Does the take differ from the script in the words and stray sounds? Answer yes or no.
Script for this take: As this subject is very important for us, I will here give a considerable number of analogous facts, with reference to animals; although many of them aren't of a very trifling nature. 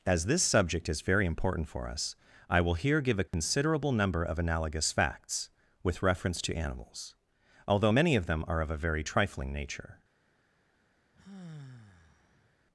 yes